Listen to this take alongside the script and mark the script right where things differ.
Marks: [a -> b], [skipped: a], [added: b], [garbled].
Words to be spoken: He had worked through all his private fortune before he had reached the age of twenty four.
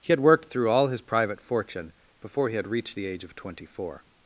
He had worked through all his private fortune before he had reached the age of twenty four.